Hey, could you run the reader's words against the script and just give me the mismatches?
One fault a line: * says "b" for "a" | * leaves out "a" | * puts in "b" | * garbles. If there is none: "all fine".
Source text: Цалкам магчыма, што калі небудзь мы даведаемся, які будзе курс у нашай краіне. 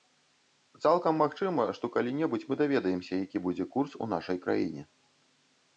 all fine